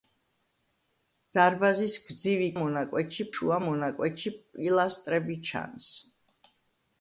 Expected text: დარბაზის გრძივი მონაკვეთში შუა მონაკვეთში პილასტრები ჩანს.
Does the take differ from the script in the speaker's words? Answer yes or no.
no